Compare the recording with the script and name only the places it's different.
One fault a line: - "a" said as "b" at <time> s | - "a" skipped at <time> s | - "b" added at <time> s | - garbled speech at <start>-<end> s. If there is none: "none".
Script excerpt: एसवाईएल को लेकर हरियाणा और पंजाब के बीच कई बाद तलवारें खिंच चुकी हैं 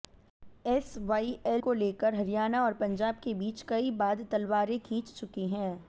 none